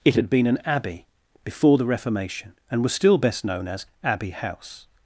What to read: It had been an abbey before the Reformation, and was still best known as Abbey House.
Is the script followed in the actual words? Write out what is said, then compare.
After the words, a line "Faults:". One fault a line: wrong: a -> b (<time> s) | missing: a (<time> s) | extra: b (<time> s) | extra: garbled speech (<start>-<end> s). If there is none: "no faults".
It had been an abbey before the Reformation, and was still best known as Abbey House.
Faults:
no faults